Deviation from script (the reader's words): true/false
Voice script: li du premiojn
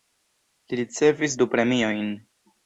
true